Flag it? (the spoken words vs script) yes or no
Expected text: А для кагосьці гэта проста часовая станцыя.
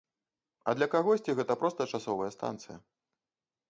no